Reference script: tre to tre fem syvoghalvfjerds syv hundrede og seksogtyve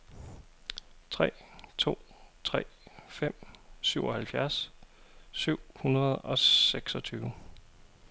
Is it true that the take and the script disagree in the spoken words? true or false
false